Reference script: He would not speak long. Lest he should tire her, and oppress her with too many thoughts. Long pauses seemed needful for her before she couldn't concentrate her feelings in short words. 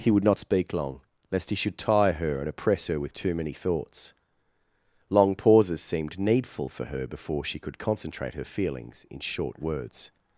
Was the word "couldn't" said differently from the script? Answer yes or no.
yes